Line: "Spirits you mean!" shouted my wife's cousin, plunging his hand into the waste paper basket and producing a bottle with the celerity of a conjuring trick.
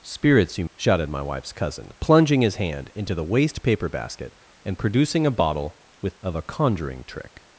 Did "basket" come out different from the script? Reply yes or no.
no